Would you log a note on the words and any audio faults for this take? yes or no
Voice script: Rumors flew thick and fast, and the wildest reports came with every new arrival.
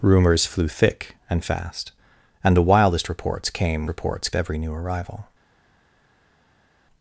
yes